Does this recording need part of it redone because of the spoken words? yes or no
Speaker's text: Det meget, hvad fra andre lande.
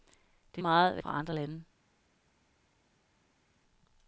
no